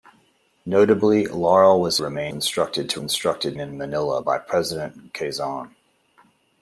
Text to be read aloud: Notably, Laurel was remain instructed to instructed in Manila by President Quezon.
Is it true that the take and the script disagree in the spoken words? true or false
false